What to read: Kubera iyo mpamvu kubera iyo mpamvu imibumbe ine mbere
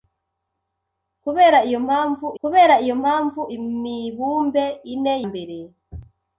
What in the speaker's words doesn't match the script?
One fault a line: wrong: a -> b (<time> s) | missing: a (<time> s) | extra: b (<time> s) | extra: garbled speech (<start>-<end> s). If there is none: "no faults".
no faults